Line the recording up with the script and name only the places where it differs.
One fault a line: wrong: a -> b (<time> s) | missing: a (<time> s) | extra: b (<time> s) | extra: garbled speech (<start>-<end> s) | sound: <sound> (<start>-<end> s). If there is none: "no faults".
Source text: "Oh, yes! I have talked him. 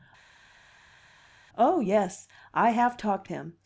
no faults